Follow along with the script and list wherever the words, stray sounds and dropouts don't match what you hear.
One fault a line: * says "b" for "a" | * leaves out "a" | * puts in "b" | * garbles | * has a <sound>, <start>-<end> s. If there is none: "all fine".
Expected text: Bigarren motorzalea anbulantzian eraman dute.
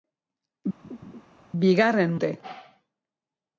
* has a laugh, 0.8-1.2 s
* leaves out "motorzalea anbulantzian eraman"